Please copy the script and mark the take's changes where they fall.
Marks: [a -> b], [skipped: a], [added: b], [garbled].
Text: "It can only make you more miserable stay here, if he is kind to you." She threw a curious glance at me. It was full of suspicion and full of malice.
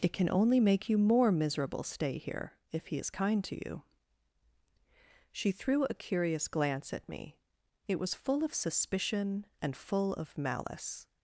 "It can only make you more miserable stay here, if he is kind to you." She threw a curious glance at me. It was full of suspicion and full of malice.